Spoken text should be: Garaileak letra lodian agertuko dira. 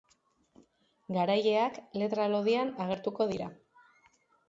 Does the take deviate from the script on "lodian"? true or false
false